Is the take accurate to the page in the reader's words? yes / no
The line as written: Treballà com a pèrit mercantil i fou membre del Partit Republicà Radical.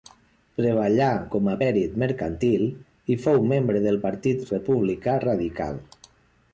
yes